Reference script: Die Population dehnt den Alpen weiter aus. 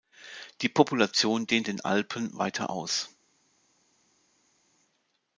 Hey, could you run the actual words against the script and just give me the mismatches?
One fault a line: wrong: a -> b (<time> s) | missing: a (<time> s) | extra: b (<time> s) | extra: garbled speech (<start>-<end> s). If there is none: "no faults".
no faults